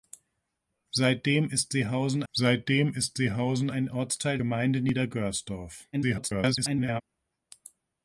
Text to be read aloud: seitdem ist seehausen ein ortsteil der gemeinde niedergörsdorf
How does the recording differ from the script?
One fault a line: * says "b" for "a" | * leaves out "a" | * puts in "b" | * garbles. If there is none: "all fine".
* puts in "seitdem ist seehausen"
* leaves out "der"
* garbles